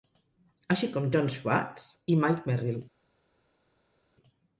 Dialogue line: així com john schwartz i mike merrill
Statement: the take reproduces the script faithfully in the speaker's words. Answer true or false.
true